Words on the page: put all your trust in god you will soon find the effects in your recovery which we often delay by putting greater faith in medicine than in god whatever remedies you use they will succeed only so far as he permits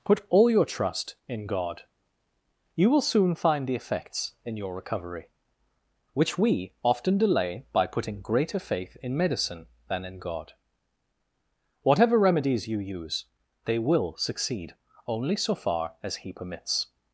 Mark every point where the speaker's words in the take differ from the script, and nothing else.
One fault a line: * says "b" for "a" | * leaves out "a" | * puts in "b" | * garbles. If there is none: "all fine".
all fine